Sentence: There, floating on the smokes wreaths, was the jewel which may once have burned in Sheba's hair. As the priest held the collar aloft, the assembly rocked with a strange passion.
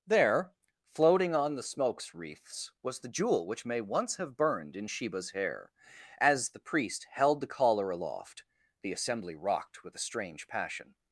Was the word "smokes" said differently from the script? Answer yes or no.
no